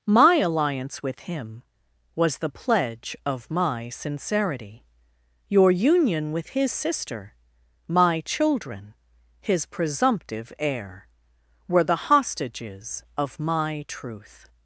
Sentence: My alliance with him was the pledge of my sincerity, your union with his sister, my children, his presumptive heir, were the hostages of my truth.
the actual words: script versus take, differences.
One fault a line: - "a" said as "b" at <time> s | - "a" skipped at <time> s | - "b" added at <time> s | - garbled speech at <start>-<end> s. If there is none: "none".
none